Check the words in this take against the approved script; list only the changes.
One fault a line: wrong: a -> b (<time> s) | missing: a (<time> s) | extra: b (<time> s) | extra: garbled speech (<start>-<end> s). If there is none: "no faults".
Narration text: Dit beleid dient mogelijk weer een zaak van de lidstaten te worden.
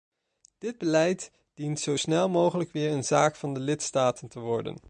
extra: zo snel (1.8 s)